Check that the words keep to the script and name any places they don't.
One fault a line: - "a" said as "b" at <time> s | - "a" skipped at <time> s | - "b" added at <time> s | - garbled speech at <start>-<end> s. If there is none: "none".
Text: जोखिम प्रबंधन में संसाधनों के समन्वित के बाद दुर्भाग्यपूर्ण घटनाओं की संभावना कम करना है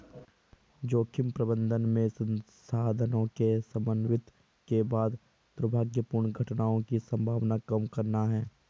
none